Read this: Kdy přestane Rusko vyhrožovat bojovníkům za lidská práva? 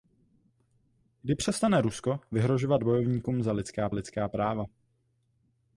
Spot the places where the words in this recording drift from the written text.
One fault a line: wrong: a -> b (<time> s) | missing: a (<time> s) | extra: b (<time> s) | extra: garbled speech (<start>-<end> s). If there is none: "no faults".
extra: lidská (3.9 s)